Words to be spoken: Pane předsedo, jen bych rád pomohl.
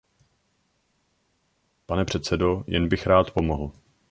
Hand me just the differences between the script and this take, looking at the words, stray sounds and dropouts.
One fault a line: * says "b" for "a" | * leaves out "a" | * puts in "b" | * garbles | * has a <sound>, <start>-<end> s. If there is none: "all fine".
all fine